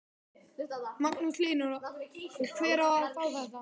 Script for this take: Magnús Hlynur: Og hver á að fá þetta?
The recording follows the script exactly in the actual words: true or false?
true